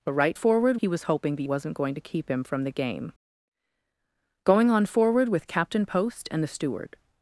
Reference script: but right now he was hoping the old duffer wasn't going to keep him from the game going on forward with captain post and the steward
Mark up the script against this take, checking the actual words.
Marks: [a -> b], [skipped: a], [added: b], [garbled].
but right [now -> forward] he was hoping the [skipped: old duffer] wasn't going to keep him from the game going on forward with captain post and the steward